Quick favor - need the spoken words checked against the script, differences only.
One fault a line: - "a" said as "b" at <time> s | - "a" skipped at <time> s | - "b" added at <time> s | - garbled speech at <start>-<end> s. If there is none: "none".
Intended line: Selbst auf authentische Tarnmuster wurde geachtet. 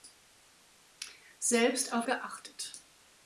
- "authentische Tarnmuster wurde" skipped at 2.1 s